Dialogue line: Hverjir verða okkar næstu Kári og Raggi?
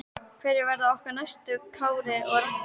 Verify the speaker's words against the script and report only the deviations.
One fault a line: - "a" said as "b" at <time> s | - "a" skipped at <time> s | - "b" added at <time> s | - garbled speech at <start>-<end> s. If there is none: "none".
none